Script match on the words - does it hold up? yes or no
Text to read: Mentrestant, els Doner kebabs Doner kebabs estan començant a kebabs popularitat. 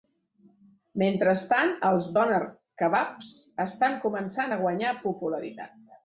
no